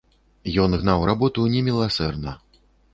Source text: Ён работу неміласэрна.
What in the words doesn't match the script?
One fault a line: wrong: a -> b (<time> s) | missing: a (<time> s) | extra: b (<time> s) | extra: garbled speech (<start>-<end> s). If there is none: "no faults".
extra: гнаў (0.8 s)